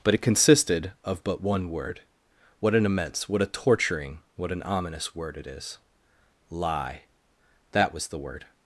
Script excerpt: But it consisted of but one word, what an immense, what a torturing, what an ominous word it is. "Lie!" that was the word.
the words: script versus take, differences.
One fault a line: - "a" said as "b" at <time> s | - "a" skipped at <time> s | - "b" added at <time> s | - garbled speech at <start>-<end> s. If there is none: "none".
none